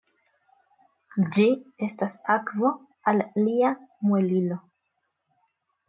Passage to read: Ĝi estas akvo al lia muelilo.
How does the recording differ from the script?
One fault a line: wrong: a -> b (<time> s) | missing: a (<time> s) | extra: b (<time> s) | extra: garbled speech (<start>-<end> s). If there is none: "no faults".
no faults